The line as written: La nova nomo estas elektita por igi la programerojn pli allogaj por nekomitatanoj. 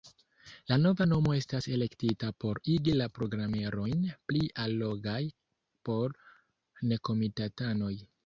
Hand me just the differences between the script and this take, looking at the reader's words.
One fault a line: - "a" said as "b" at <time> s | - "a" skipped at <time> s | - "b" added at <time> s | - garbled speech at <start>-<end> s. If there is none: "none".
none